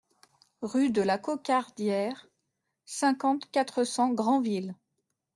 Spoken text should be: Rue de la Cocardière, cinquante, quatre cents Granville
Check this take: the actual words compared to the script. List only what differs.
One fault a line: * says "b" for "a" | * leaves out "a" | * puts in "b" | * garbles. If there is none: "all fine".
all fine